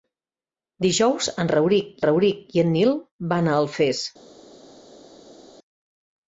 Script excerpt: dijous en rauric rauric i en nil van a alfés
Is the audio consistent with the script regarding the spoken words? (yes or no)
yes